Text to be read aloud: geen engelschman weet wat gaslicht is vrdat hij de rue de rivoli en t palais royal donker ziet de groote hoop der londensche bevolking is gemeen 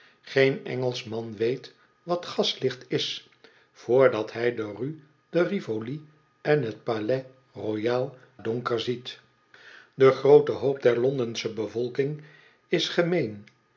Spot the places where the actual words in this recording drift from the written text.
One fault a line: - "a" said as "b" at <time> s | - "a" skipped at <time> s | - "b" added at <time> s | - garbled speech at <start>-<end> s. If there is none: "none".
none